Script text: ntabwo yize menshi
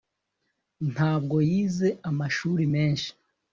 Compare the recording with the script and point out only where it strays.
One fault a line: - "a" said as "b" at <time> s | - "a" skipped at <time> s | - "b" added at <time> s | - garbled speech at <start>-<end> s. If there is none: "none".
- "amashuri" added at 2.1 s